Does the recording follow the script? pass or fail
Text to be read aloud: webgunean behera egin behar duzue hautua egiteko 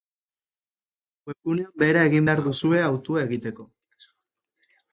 pass